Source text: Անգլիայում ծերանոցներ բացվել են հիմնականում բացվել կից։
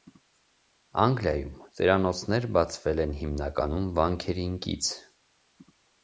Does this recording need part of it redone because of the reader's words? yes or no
yes